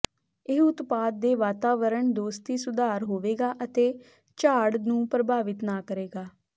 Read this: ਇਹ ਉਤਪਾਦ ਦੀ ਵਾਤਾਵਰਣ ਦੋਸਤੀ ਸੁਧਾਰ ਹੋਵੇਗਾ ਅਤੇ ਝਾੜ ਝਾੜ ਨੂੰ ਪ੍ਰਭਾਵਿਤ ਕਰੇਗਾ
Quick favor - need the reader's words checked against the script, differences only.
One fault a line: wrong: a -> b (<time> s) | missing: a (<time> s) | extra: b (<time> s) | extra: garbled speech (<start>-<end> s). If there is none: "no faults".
wrong: ਦੀ -> ਦੇ (1.2 s)
missing: ਝਾੜ (4.7 s)
extra: ਨਾ (5.6 s)